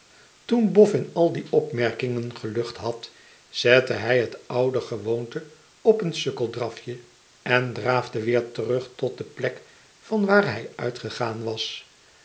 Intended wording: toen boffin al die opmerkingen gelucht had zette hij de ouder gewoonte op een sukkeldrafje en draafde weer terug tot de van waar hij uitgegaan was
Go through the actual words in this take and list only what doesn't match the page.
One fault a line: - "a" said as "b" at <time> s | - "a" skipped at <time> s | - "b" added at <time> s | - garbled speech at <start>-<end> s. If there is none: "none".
- "de" said as "het" at 4.2 s
- "plek" added at 9.2 s